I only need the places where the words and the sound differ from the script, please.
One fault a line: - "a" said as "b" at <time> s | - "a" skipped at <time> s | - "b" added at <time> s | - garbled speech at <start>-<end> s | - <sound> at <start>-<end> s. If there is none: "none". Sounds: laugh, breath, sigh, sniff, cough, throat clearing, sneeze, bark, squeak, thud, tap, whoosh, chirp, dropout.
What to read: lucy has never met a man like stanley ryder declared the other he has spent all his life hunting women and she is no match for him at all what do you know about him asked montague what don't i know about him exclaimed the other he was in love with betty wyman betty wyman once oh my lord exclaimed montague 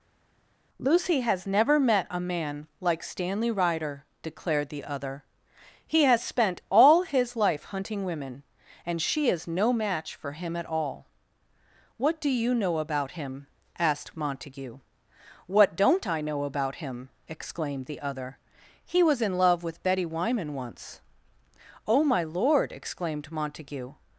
- "betty wyman" skipped at 20.5 s